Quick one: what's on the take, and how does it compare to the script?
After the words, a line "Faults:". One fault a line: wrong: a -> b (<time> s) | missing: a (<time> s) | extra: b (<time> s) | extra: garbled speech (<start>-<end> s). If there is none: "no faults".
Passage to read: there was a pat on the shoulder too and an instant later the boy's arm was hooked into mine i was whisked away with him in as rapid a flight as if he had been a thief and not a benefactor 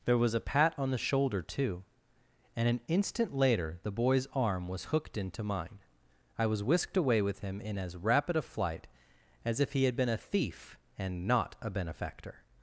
there was a pat on the shoulder too and an instant later the boy's arm was hooked into mine i was whisked away with him in as rapid a flight as if he had been a thief and not a benefactor
Faults:
no faults